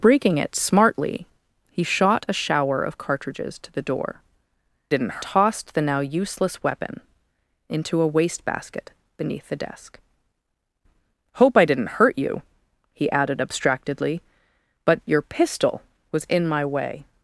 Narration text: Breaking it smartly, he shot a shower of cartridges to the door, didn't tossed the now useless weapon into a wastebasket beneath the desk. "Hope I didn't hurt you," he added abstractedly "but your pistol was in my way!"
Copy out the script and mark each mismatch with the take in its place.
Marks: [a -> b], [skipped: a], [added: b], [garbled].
Breaking it smartly, he shot a shower of cartridges to the door, didn't tossed the now useless weapon into a wastebasket beneath the desk. "Hope I didn't hurt you," he added abstractedly "but your pistol was in my way!"